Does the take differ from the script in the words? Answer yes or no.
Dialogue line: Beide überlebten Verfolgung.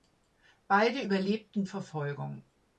no